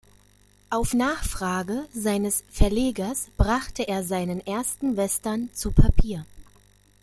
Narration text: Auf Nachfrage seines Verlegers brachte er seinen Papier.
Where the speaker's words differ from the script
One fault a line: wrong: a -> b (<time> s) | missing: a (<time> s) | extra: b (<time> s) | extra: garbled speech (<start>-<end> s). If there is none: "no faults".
extra: ersten Western zu (4.4 s)